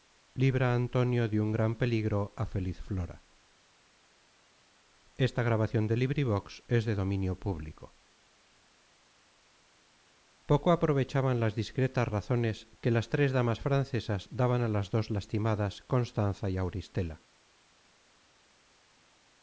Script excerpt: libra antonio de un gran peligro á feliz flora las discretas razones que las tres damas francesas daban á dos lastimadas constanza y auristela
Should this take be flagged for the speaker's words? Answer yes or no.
yes